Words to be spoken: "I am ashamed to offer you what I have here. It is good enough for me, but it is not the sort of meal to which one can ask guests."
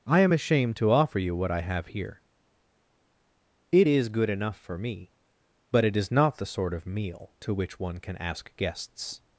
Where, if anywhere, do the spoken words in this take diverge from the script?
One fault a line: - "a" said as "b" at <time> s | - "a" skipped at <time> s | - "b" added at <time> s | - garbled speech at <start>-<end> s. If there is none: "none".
none